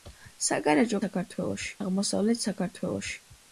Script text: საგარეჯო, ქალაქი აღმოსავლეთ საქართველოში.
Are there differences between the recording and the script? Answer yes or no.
yes